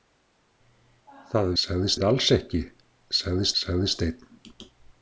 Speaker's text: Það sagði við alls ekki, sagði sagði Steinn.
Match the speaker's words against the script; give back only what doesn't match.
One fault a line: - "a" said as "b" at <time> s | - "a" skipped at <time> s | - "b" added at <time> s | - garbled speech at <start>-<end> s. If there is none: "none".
none